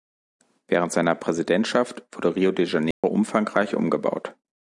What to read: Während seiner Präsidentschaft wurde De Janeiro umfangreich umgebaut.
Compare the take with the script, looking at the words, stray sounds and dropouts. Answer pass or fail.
fail